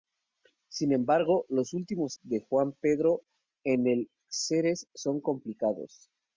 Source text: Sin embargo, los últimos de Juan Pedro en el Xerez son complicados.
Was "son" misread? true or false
false